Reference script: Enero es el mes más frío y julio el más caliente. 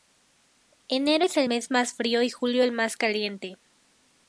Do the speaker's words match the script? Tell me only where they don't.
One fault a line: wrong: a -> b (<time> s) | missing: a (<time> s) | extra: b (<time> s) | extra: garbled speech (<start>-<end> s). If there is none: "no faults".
no faults